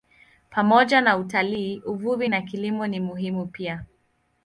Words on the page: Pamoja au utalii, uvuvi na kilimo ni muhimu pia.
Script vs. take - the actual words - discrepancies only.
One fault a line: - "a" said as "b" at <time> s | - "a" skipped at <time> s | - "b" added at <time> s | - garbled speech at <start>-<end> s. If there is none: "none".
- "au" said as "na" at 1.0 s